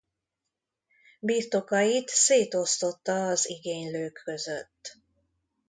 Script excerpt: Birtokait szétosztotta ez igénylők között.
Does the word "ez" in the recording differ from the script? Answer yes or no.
yes